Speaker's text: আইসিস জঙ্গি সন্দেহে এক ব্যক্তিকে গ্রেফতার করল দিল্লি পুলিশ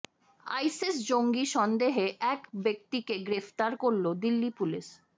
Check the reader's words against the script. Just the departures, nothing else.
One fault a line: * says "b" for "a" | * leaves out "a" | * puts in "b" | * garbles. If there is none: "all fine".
all fine